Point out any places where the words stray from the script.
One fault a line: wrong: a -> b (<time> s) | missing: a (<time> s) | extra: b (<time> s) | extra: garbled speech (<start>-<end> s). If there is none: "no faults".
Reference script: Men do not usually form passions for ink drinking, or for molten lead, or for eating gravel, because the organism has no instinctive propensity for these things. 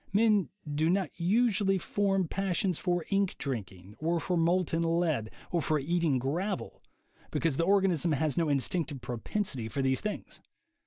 no faults